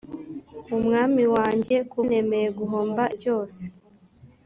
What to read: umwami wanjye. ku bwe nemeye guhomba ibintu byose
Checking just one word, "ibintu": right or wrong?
wrong